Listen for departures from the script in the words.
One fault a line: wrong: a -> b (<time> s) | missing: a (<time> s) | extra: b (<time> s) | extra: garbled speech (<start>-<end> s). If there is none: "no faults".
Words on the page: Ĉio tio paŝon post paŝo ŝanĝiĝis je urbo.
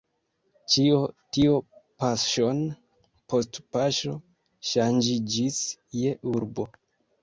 no faults